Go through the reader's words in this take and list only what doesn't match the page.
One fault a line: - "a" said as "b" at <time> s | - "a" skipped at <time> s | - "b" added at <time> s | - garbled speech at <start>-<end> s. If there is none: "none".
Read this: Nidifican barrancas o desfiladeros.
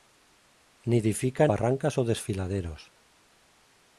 none